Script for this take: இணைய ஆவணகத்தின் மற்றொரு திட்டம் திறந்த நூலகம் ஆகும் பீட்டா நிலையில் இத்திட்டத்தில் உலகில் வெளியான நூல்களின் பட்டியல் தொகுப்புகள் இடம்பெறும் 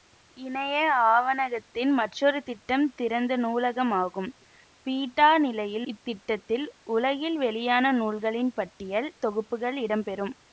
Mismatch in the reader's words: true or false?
false